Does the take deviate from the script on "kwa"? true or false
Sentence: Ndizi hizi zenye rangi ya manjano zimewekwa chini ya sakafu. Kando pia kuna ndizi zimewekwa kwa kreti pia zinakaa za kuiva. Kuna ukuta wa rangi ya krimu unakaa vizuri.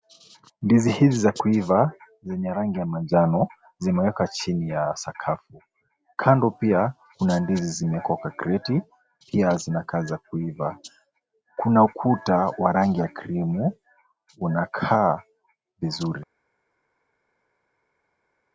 false